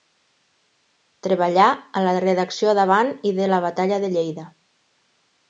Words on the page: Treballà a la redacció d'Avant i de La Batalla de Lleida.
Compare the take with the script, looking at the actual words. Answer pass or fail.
pass